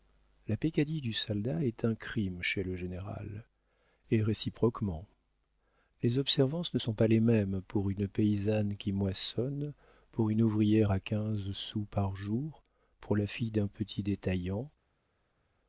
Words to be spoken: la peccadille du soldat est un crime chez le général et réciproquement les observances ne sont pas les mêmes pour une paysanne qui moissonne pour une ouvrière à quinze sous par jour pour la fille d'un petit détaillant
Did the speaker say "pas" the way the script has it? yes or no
yes